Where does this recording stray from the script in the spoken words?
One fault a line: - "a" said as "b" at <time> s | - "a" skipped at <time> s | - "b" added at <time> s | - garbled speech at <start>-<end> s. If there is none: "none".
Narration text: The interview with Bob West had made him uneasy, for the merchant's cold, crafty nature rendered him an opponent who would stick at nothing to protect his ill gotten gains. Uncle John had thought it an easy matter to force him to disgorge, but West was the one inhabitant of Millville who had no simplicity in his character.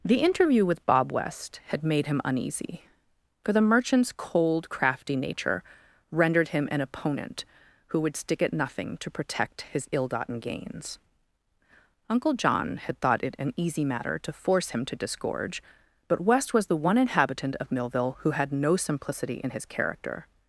none